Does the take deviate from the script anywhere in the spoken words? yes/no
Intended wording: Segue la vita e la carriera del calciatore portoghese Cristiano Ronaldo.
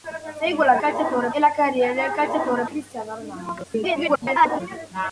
yes